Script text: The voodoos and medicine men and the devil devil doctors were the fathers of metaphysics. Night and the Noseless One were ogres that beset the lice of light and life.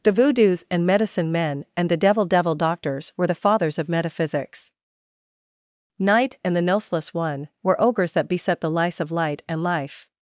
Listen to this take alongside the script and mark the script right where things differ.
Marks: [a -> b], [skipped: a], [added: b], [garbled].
The voodoos and medicine men and the devil devil doctors were the fathers of metaphysics. Night and the Noseless One were ogres that beset the lice of light and life.